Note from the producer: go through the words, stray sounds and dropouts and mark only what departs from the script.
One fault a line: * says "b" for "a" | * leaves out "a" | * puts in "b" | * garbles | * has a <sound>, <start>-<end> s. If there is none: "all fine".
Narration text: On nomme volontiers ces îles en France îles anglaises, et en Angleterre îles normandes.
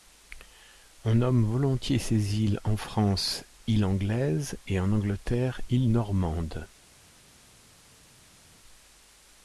all fine